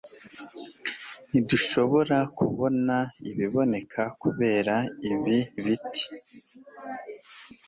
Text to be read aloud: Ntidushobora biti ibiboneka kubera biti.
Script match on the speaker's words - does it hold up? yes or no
no